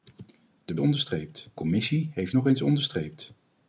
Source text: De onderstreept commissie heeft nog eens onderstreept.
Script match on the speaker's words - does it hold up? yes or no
yes